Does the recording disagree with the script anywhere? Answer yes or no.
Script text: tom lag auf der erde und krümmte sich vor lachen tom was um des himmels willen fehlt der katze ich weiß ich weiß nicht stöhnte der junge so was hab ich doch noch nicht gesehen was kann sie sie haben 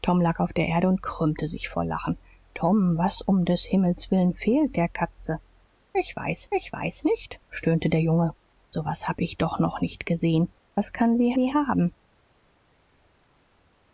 no